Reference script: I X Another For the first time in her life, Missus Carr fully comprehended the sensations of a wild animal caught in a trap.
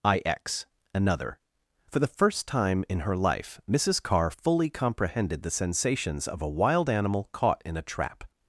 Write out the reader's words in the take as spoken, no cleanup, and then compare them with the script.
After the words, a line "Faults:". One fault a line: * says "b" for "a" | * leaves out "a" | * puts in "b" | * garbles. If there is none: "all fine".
I X Another For the first time in her life, Missus Carr fully comprehended the sensations of a wild animal caught in a trap.
Faults:
all fine